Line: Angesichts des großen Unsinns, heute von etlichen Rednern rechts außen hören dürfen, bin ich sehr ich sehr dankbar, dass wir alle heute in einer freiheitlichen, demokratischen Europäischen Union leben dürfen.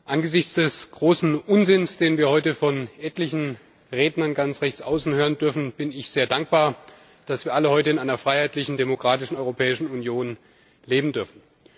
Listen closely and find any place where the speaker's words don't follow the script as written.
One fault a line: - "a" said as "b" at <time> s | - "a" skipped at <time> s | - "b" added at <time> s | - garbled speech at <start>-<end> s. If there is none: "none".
- "den wir" added at 2.0 s
- "ganz" added at 4.3 s
- "ich sehr" skipped at 6.3 s